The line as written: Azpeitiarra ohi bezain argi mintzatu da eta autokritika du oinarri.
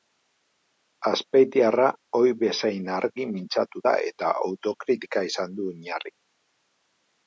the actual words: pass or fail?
fail